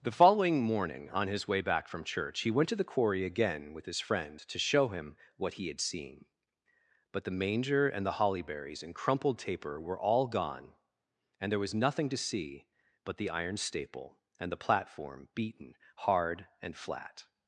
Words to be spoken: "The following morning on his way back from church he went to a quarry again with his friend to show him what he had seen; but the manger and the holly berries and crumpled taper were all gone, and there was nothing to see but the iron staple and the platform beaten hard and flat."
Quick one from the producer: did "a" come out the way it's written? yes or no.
no